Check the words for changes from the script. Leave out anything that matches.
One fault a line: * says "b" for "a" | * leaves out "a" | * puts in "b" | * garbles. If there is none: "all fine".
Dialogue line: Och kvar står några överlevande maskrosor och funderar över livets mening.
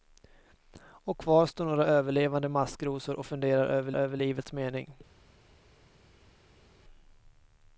* puts in "över"